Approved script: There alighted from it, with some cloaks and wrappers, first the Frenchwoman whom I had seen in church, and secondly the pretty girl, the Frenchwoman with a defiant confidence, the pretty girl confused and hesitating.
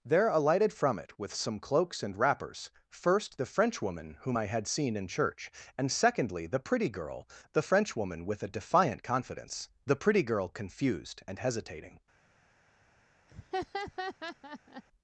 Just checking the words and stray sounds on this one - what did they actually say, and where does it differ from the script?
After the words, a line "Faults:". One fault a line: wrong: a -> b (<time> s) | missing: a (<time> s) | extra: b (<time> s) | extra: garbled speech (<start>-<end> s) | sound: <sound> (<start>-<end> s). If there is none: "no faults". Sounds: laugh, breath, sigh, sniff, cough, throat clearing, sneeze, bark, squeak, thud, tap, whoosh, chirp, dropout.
There alighted from it, with some cloaks and wrappers, first the Frenchwoman whom I had seen in church, and secondly the pretty girl, the Frenchwoman with a defiant confidence, the pretty girl confused and hesitating.
Faults:
sound: laugh (13.3-14.8 s)